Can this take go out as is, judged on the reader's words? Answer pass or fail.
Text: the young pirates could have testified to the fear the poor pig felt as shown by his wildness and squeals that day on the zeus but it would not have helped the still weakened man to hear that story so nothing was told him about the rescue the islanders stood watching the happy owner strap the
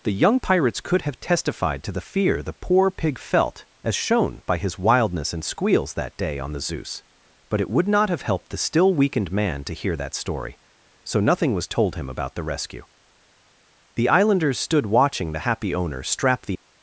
pass